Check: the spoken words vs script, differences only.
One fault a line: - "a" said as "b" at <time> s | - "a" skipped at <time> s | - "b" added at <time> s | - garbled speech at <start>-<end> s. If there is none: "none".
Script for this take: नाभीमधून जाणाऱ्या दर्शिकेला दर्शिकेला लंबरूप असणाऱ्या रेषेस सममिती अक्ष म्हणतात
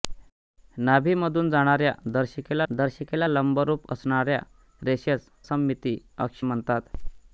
none